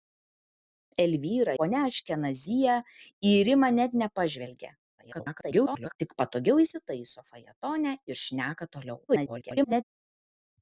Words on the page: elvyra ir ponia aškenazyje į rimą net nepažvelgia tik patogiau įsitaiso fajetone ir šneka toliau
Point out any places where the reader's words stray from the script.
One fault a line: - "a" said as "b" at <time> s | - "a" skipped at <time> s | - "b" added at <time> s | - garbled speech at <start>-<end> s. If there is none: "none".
- "ir" skipped at 1.5 s
- garbled speech at 5.0-6.0 s
- garbled speech at 9.1-9.8 s